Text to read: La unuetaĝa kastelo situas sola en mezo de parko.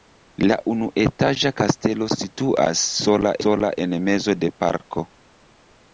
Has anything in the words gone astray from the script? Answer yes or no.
yes